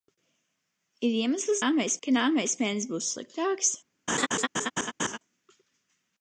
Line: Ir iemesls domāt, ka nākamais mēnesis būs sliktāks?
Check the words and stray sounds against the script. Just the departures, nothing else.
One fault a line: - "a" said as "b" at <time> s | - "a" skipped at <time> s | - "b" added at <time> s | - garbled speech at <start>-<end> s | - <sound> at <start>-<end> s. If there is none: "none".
- "domāt" said as "nākamais" at 1.6 s
- laugh at 4.1-5.2 s